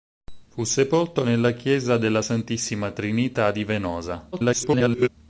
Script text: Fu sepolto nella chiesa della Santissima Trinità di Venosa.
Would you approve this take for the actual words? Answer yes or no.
no